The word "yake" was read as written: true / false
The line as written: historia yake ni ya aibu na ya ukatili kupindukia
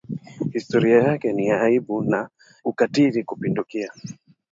true